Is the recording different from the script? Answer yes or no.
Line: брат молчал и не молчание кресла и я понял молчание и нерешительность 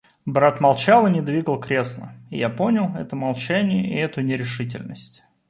yes